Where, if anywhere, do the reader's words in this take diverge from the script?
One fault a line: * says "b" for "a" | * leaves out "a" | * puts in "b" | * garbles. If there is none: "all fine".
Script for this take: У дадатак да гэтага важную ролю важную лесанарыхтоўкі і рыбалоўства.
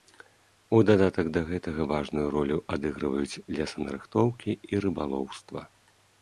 * says "адыгрываюць" for "важную"